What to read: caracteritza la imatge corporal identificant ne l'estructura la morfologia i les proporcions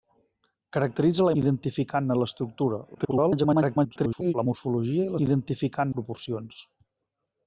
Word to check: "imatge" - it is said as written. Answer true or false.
false